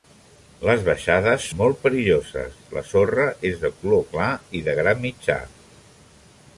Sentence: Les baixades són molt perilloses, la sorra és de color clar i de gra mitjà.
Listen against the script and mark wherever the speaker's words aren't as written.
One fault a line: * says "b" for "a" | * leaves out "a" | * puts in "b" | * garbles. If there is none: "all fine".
* leaves out "són"